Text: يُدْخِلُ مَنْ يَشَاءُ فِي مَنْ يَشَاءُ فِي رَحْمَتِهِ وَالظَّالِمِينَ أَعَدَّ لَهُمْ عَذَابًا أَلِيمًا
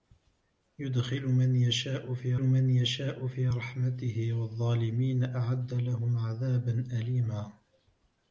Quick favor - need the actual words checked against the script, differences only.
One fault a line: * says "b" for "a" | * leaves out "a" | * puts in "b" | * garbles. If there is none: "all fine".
all fine